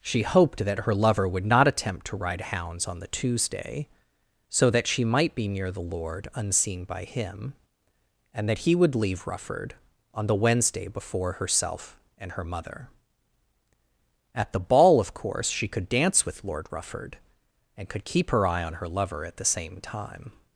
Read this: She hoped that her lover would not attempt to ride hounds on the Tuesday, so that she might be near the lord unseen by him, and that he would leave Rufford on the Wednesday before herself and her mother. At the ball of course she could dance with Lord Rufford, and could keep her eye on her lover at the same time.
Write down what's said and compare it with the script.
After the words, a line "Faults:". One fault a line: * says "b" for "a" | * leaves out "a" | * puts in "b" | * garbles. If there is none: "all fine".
She hoped that her lover would not attempt to ride hounds on the Tuesday, so that she might be near the lord unseen by him, and that he would leave Rufford on the Wednesday before herself and her mother. At the ball of course she could dance with Lord Rufford, and could keep her eye on her lover at the same time.
Faults:
all fine